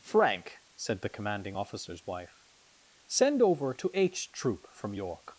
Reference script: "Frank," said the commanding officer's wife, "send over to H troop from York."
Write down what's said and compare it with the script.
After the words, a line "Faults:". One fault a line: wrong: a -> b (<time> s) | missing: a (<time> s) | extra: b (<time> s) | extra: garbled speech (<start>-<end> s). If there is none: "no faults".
"Frank," said the commanding officer's wife, "send over to H troop from York."
Faults:
no faults